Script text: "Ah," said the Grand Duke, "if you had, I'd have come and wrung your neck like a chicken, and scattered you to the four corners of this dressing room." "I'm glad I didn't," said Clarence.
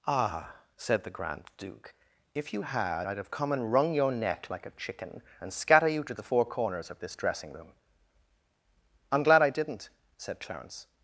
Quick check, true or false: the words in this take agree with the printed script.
false